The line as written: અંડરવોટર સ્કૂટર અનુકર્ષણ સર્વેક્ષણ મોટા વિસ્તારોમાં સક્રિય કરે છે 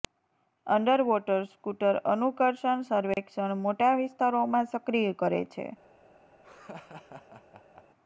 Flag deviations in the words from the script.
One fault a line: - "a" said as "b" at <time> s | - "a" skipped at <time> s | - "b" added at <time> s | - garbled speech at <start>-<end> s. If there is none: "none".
none